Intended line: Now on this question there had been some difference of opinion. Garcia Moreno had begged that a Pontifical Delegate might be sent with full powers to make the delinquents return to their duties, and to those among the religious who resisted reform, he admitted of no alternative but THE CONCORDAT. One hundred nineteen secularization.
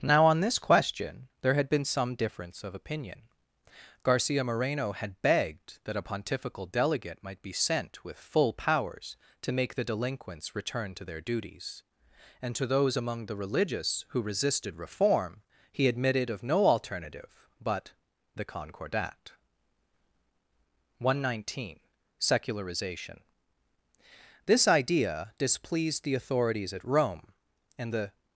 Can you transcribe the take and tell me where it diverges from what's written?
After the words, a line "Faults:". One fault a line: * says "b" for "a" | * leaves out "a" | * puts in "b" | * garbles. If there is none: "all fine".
Now on this question there had been some difference of opinion. Garcia Moreno had begged that a Pontifical Delegate might be sent with full powers to make the delinquents return to their duties, and to those among the religious who resisted reform, he admitted of no alternative but THE CONCORDAT. One hundred nineteen secularization. This idea displeased the authorities at Rome, and the
Faults:
* puts in "This idea displeased the authorities at Rome and the"